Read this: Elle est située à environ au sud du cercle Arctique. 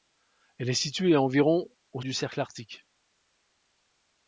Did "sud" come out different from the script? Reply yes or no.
yes